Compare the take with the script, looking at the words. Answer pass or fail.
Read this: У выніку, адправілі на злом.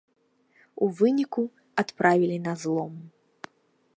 pass